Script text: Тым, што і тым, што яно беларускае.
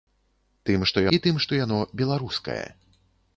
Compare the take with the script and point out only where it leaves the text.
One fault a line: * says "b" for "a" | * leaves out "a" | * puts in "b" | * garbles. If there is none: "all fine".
all fine